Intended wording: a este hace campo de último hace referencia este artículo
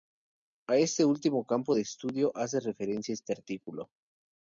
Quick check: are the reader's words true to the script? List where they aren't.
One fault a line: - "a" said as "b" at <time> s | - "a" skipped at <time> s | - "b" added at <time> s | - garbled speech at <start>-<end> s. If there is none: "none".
- "hace" said as "último" at 1.1 s
- "último" said as "estudio" at 1.8 s